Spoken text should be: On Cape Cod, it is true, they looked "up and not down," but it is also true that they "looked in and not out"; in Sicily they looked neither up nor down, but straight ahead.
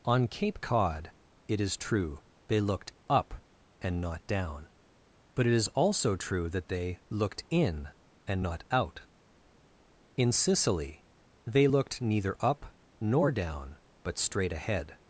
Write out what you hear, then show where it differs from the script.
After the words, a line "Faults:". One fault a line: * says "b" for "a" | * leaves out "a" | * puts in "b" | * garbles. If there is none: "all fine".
On Cape Cod, it is true, they looked "up and not down," but it is also true that they "looked in and not out"; in Sicily they looked neither up nor down, but straight ahead.
Faults:
all fine